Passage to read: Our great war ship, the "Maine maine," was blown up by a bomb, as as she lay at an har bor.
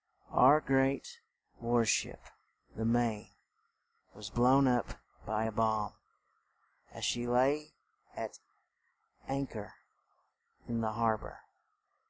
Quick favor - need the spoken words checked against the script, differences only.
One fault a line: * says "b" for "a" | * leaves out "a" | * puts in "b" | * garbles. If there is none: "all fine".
* leaves out "maine"
* leaves out "as"
* puts in "chor in the"